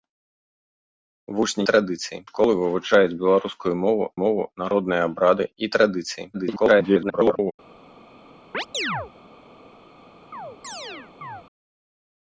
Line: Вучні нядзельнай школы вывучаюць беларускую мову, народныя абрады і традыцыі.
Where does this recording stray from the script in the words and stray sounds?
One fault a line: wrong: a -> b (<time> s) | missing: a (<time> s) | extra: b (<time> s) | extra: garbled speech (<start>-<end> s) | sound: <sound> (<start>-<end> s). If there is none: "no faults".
wrong: нядзельнай -> традыцыі (1.7 s)
extra: мову (4.2 s)
extra: garbled speech (6.3-7.5 s)
sound: chirp (8.5-9.1 s)
sound: chirp (10.3-11.4 s)